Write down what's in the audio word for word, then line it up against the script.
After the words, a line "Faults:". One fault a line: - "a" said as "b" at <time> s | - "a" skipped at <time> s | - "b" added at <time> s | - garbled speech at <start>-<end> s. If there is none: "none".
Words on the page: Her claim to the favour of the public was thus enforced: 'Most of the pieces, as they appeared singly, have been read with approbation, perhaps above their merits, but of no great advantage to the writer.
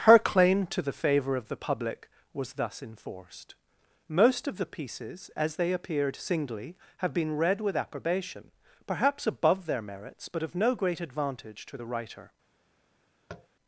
Her claim to the favour of the public was thus enforced: 'Most of the pieces, as they appeared singly, have been read with approbation, perhaps above their merits, but of no great advantage to the writer.
Faults:
none